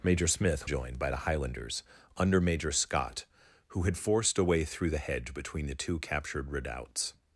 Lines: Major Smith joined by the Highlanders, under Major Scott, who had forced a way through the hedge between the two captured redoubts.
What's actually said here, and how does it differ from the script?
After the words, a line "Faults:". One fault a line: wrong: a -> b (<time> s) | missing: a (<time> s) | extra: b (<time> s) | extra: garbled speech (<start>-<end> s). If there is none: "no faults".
Major Smith joined by the Highlanders, under Major Scott, who had forced a way through the hedge between the two captured redoubts.
Faults:
no faults